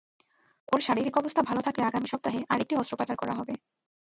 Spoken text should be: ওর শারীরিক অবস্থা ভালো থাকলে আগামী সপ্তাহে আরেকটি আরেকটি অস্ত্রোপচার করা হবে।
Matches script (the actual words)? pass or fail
fail